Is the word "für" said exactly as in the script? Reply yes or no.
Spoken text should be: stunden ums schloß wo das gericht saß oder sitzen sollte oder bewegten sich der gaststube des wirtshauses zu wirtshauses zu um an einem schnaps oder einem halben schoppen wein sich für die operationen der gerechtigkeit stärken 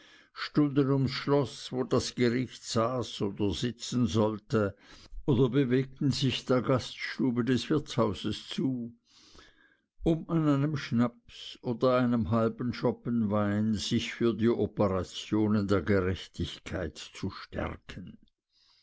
yes